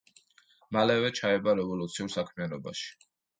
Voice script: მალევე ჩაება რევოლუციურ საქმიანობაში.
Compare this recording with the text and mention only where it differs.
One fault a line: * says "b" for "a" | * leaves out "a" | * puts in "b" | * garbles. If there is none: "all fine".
all fine